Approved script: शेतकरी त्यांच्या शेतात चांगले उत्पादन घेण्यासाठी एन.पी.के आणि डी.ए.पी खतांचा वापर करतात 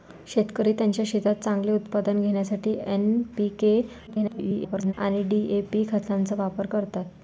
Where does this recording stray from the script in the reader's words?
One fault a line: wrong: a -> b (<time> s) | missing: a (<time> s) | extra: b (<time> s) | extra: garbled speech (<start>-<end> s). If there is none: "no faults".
extra: garbled speech (4.1-4.9 s)